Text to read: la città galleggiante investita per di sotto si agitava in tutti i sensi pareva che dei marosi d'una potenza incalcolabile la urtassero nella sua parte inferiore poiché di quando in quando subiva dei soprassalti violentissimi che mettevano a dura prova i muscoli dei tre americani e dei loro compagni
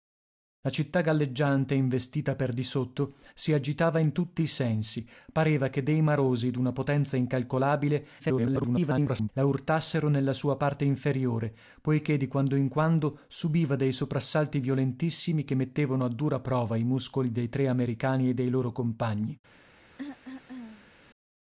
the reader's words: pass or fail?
fail